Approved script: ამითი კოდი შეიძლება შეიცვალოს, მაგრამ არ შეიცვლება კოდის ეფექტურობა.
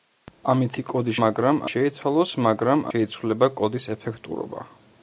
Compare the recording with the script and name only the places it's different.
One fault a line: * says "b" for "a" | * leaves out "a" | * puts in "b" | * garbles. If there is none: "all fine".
* says "მაგრამ" for "შეიძლება"
* leaves out "არ"